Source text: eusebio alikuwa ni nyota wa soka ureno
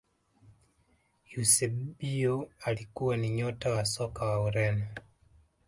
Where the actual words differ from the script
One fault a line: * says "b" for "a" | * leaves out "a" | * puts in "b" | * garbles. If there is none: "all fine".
* puts in "wa"